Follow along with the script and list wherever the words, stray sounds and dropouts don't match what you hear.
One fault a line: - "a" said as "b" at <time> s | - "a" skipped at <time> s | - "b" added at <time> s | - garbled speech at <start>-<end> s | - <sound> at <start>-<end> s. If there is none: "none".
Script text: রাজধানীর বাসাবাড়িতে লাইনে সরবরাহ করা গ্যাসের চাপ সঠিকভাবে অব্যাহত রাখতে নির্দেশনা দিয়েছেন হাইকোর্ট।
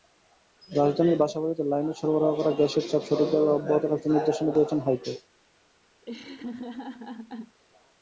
- laugh at 6.0-7.6 s